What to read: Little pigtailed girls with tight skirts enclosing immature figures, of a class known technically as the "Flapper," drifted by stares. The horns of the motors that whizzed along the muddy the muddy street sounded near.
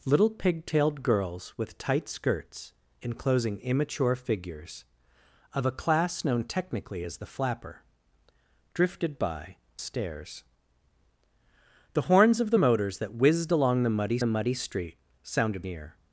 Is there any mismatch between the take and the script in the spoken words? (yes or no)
no